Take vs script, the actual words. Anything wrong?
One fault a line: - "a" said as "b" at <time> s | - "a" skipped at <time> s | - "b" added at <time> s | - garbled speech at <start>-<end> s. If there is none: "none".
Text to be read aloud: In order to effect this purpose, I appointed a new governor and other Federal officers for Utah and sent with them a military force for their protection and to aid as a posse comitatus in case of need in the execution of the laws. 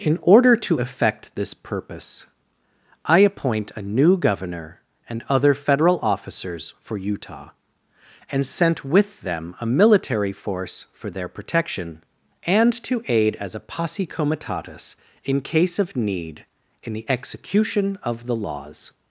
- "appointed" said as "appoint" at 3.2 s